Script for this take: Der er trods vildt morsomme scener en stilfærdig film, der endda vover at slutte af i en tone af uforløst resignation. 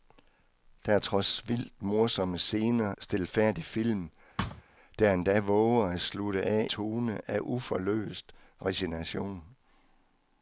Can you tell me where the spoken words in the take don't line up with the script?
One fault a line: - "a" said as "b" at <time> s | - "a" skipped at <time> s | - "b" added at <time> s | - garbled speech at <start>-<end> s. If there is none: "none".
- "en" skipped at 2.9 s
- "i en" skipped at 6.7 s